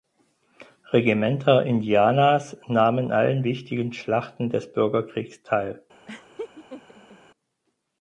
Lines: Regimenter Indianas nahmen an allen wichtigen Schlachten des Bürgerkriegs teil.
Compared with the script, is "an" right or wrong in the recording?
wrong